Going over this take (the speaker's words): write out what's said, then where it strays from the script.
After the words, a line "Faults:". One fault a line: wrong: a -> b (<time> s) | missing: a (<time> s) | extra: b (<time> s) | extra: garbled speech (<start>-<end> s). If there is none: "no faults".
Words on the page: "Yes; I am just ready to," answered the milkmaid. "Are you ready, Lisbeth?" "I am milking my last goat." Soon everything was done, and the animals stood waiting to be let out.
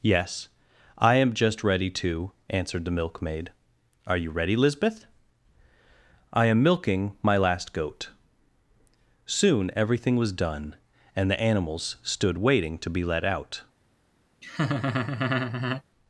"Yes; I am just ready to," answered the milkmaid. "Are you ready, Lisbeth?" "I am milking my last goat." Soon everything was done, and the animals stood waiting to be let out.
Faults:
no faults